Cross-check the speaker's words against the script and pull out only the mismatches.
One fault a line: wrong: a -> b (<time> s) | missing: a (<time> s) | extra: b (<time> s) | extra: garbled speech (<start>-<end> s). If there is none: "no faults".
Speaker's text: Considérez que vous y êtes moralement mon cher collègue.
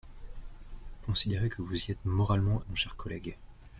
no faults